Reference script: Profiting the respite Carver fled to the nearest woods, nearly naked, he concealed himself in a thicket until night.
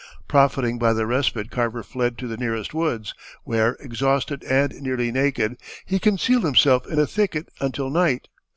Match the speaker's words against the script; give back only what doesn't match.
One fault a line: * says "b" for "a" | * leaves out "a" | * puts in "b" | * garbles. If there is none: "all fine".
* puts in "by"
* puts in "where exhausted and"